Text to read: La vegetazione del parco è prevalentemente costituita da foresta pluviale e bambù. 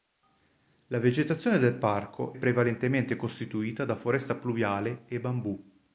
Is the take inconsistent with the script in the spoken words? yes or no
yes